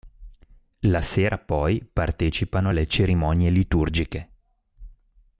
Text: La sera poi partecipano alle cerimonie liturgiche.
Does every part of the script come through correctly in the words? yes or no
yes